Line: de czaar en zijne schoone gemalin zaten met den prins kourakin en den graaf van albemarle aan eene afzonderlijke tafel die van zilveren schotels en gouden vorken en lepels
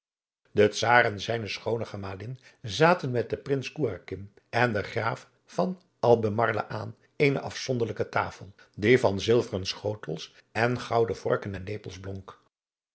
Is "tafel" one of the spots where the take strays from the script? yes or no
no